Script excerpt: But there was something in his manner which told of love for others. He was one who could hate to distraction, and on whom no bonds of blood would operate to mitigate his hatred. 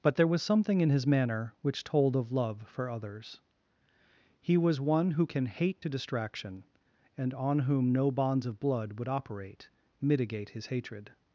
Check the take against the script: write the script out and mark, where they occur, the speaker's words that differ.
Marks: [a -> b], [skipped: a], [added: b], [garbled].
But there was something in his manner which told of love for others. He was one who [could -> can] hate to distraction, and on whom no bonds of blood would operate [skipped: to] mitigate his hatred.